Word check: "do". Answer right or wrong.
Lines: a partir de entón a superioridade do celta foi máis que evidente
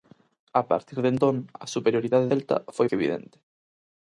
wrong